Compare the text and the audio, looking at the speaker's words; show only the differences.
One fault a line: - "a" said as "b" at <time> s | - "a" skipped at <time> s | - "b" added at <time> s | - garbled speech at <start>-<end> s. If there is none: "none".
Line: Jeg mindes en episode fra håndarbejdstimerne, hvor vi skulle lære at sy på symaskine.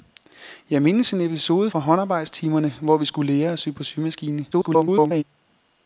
- garbled speech at 4.5-5.2 s